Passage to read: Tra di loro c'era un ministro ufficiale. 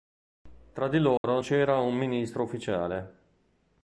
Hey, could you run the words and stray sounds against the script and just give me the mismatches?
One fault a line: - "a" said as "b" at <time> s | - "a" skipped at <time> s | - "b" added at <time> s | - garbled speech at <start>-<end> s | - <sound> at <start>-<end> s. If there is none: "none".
- dropout at 1.2-1.2 s